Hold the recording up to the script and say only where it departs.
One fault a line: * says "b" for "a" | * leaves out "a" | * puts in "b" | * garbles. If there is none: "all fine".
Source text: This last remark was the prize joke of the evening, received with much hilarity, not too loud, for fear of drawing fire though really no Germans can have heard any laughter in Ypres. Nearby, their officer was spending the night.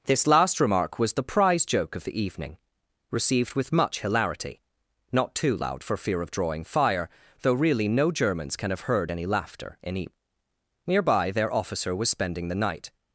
all fine